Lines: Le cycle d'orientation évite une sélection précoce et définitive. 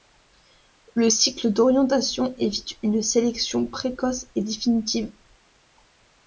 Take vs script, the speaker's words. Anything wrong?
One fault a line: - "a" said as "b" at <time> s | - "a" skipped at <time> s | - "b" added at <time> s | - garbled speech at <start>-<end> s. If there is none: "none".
none